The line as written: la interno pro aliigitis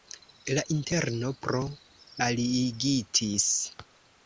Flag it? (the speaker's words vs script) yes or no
no